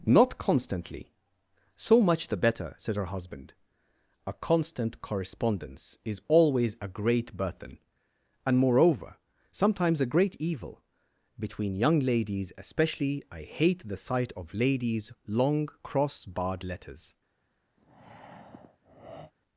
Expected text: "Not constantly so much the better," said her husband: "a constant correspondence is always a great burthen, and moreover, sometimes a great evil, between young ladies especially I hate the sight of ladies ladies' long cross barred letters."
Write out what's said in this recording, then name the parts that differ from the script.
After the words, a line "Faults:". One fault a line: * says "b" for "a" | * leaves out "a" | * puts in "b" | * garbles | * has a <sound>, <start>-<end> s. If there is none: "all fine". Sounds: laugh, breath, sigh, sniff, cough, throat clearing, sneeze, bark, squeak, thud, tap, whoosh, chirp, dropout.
"Not constantly so much the better," said her husband: "a constant correspondence is always a great burthen, and moreover, sometimes a great evil, between young ladies especially I hate the sight of ladies' long cross barred letters."
Faults:
* leaves out "ladies"
* has a breath, 17.8-19.3 s